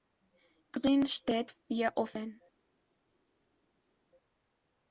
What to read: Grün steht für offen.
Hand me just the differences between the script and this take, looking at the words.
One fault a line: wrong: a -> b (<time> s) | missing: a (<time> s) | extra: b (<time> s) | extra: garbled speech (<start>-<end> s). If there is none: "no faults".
no faults